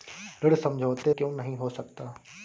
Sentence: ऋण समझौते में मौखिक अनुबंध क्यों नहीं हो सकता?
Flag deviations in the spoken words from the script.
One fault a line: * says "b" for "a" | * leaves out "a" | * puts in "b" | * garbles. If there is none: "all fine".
* leaves out "में मौखिक अनुबंध"